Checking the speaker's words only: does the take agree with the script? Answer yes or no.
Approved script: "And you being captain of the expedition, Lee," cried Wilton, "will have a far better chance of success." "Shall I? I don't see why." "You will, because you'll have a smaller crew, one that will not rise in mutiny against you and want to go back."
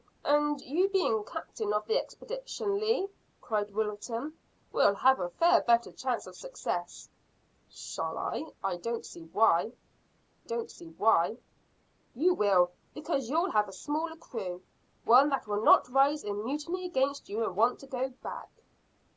no